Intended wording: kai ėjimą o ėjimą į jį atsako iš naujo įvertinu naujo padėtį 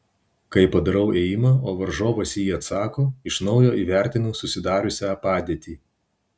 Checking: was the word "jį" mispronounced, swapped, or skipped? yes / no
no